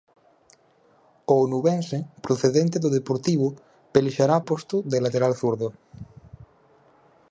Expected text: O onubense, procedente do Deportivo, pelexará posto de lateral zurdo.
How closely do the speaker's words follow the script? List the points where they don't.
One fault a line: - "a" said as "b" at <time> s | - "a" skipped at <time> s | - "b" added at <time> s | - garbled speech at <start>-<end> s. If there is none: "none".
none